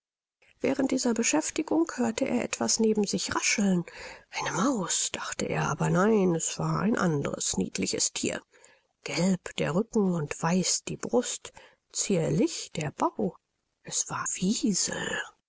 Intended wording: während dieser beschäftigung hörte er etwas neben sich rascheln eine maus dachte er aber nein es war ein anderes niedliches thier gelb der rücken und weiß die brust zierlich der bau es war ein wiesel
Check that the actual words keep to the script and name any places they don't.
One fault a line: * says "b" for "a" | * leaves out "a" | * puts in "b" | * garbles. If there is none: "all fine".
* leaves out "ein"